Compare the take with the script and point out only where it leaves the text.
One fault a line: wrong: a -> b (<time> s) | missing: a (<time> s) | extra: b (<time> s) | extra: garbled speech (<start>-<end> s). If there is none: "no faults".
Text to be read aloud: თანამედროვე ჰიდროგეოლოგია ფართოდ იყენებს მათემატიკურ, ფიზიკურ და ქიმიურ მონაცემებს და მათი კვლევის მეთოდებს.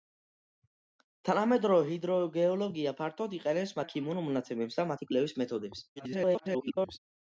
missing: მათემატიკურ ფიზიკურ (3.8 s)
extra: garbled speech (6.0-7.0 s)